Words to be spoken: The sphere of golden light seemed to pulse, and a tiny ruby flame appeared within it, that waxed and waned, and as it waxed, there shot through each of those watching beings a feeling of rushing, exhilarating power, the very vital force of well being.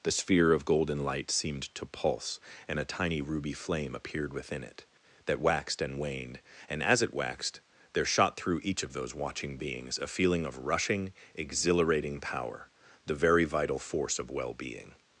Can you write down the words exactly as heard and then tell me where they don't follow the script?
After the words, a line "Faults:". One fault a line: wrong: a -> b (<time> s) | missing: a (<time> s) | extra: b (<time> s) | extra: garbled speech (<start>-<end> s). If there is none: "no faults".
The sphere of golden light seemed to pulse, and a tiny ruby flame appeared within it, that waxed and waned, and as it waxed, there shot through each of those watching beings a feeling of rushing, exhilarating power, the very vital force of well being.
Faults:
no faults